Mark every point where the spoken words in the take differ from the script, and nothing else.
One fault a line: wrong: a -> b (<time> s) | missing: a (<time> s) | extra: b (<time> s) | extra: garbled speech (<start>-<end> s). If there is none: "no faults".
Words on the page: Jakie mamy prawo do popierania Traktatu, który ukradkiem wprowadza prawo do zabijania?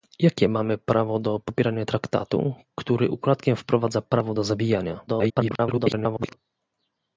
extra: garbled speech (5.1-6.4 s)